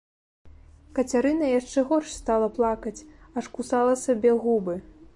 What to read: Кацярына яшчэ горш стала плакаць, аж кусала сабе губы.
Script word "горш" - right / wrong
right